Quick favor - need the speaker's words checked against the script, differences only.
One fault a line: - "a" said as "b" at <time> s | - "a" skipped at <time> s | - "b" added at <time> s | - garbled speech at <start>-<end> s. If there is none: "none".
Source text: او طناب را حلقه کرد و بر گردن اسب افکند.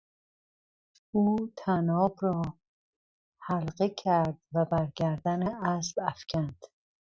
none